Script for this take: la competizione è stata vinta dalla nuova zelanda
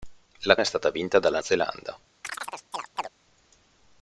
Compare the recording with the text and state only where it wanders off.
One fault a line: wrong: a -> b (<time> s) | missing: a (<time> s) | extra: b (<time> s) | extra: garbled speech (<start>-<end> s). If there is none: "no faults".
missing: competizione (0.6 s)
missing: nuova (1.4 s)